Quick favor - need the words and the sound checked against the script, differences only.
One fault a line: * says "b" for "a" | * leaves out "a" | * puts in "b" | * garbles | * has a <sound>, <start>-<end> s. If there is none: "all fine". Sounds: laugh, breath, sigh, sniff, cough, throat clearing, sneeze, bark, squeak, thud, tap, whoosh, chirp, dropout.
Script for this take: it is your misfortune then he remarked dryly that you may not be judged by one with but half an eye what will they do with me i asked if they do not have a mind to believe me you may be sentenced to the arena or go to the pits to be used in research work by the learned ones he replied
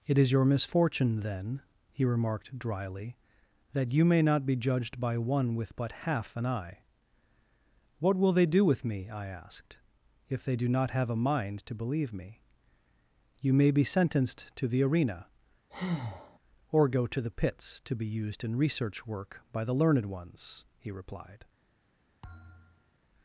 * has a breath, 15.7-16.4 s
* has a thud, 22.2-23.0 s